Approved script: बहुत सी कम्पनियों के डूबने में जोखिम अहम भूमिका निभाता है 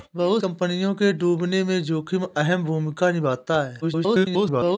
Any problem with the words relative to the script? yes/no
yes